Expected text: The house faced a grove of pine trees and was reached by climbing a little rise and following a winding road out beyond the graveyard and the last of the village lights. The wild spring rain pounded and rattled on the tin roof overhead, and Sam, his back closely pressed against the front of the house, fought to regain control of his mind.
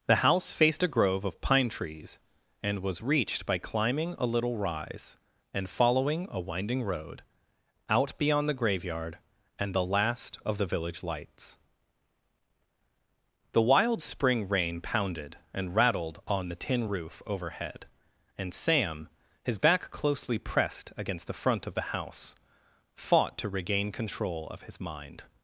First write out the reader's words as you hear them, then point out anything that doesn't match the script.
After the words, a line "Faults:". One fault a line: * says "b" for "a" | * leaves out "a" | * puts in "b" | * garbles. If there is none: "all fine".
The house faced a grove of pine trees and was reached by climbing a little rise and following a winding road out beyond the graveyard and the last of the village lights. The wild spring rain pounded and rattled on the tin roof overhead, and Sam, his back closely pressed against the front of the house, fought to regain control of his mind.
Faults:
all fine